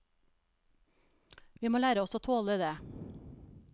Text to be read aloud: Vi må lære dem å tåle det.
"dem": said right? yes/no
no